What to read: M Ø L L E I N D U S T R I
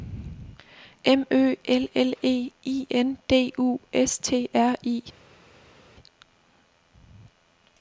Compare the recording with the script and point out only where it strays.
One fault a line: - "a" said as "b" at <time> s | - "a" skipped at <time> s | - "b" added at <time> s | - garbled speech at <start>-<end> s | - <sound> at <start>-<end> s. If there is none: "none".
none